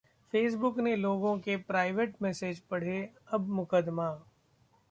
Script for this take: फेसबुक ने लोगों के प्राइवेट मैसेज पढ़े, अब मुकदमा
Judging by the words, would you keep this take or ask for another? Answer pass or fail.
pass